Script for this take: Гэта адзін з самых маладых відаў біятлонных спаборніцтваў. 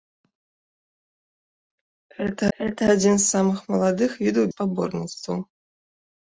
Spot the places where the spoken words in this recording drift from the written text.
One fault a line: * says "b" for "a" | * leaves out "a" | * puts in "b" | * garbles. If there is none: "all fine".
* puts in "гэта"
* leaves out "біятлонных"